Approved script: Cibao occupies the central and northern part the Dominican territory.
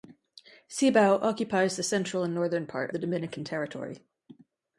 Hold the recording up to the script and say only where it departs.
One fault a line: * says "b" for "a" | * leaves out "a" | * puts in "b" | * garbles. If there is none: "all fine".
all fine